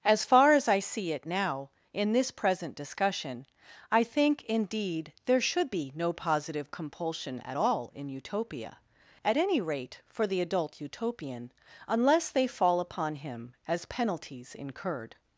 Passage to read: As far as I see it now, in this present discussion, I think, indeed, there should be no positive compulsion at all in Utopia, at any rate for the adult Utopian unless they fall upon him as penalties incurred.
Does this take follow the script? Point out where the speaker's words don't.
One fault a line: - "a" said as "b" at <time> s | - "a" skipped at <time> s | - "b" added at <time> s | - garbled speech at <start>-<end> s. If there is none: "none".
none